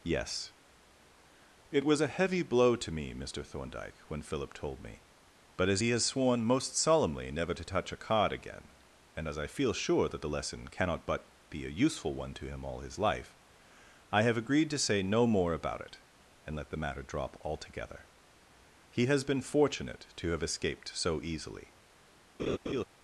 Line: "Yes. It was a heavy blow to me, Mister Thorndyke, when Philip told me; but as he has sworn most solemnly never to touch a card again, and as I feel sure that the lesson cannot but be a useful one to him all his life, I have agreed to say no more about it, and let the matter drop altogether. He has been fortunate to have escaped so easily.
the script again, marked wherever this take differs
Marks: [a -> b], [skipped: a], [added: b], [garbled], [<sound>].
"Yes. It was a heavy blow to me, Mister Thorndyke, when Philip told me; but as he has sworn most solemnly never to touch a card again, and as I feel sure that the lesson cannot but be a useful one to him all his life, I have agreed to say no more about it, and let the matter drop altogether. He has been fortunate to have escaped so easily. [laugh]